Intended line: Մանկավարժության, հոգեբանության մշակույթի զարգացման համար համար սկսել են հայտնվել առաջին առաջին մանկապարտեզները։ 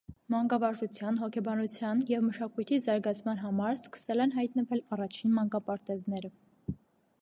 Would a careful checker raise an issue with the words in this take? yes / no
yes